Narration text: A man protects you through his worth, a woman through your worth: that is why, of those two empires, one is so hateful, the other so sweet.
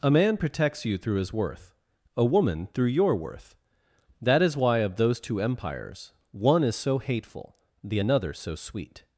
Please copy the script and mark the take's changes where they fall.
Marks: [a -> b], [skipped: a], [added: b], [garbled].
A man protects you through his worth, a woman through your worth: that is why, of those two empires, one is so hateful, the [other -> another] so sweet.